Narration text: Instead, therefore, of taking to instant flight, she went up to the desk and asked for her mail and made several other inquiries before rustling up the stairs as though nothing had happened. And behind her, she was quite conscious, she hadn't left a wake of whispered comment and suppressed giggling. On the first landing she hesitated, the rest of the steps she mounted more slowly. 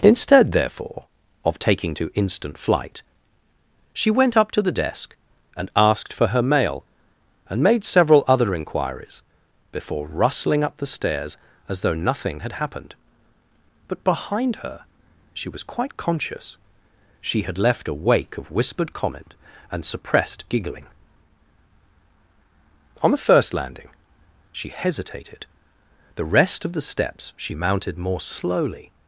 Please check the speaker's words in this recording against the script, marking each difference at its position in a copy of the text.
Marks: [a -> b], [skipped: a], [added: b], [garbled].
Instead, therefore, of taking to instant flight, she went up to the desk and asked for her mail and made several other inquiries before rustling up the stairs as though nothing had happened. [And -> But] behind her, she was quite conscious, she [hadn't -> had] left a wake of whispered comment and suppressed giggling. On the first landing she hesitated, the rest of the steps she mounted more slowly.